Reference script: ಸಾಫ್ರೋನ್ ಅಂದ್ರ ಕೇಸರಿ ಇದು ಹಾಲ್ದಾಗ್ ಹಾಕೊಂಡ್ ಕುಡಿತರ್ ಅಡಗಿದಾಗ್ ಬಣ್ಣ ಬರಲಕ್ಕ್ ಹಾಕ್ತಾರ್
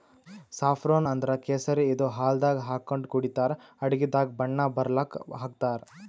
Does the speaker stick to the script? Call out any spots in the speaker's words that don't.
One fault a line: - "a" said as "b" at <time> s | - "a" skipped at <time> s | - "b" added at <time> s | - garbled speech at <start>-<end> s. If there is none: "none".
none